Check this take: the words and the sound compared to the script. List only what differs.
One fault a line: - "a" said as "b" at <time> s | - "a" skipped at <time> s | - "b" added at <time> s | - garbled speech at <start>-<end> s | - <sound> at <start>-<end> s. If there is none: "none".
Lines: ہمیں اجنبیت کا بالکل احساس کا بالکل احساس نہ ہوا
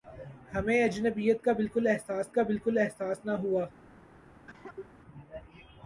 - cough at 4.5-4.9 s